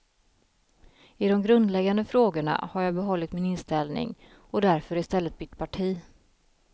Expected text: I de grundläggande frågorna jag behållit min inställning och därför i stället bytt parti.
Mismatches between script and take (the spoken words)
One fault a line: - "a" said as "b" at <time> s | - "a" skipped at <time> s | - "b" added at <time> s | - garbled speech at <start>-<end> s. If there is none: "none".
- "har" added at 2.7 s